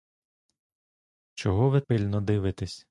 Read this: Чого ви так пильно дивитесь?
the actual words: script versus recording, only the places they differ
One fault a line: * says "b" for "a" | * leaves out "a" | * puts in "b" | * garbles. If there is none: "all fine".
* leaves out "так"